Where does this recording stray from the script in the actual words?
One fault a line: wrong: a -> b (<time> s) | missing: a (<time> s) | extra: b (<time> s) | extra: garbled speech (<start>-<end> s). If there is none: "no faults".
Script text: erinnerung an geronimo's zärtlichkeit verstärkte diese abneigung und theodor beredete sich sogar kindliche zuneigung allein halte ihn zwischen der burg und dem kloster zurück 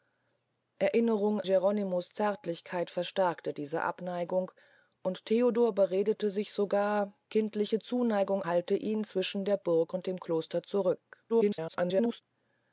missing: an (1.4 s)
missing: allein (8.4 s)
extra: garbled speech (11.3-12.2 s)